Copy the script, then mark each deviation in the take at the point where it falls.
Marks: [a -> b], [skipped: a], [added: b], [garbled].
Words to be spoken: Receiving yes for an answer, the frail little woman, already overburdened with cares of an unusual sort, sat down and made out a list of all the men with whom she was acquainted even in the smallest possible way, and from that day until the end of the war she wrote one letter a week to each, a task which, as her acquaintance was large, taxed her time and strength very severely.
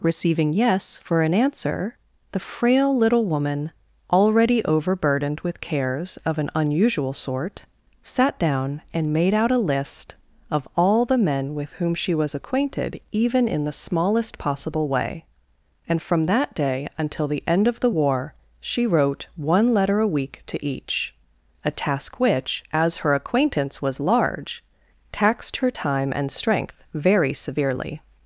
Receiving yes for an answer, the frail little woman, already overburdened with cares of an unusual sort, sat down and made out a list of all the men with whom she was acquainted even in the smallest possible way, and from that day until the end of the war she wrote one letter a week to each, a task which, as her acquaintance was large, taxed her time and strength very severely.